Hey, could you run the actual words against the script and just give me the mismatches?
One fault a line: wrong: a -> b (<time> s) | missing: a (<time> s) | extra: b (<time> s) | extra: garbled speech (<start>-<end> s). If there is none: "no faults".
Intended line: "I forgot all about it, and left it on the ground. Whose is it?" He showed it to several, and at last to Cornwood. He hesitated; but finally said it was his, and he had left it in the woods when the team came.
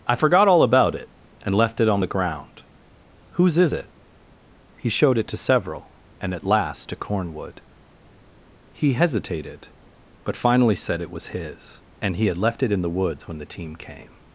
no faults